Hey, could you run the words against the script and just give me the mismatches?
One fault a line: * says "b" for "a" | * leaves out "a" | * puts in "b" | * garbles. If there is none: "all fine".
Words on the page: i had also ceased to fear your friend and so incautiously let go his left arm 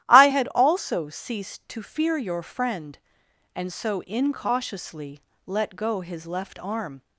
all fine